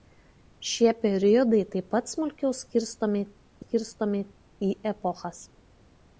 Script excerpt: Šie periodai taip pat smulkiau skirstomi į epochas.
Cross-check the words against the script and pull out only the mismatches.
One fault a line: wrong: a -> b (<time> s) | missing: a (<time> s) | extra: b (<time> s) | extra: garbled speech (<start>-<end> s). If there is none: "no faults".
extra: skirstomi (3.6 s)